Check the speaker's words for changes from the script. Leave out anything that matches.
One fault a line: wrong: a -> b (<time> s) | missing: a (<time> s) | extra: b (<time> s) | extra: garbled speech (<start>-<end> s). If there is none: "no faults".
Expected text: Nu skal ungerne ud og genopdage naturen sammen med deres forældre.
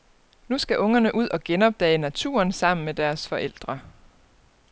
no faults